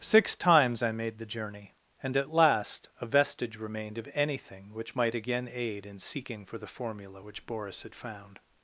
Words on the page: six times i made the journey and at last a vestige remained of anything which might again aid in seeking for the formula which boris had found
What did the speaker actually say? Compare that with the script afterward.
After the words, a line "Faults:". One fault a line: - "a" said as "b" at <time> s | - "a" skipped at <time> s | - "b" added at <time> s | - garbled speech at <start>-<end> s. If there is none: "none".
six times i made the journey and at last a vestige remained of anything which might again aid in seeking for the formula which boris had found
Faults:
none